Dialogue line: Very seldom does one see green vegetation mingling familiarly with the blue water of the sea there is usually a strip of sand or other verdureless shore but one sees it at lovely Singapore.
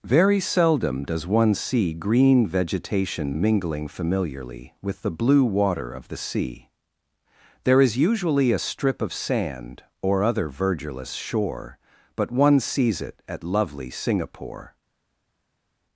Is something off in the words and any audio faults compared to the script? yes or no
no